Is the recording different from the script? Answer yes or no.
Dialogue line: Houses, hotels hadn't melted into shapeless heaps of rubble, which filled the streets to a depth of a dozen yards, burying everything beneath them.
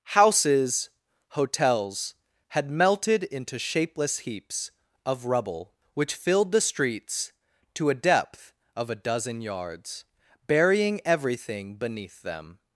yes